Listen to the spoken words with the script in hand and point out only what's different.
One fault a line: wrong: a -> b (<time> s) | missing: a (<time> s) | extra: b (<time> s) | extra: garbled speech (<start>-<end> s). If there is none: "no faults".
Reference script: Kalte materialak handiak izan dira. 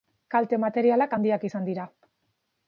no faults